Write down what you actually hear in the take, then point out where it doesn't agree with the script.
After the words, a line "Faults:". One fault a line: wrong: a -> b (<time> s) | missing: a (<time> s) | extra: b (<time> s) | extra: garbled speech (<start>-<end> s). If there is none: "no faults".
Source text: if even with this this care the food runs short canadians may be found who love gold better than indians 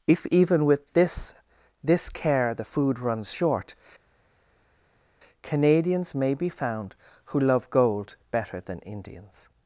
if even with this this care the food runs short canadians may be found who love gold better than indians
Faults:
no faults